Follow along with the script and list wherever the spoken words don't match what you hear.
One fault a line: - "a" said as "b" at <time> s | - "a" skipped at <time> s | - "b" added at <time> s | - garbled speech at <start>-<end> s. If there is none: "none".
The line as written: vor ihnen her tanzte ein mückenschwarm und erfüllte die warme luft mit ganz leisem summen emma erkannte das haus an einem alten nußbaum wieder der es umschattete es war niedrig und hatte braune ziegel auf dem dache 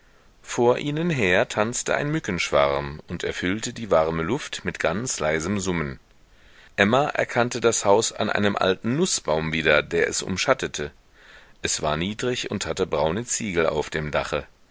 none